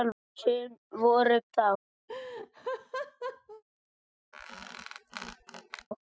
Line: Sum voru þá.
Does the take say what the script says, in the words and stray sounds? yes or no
no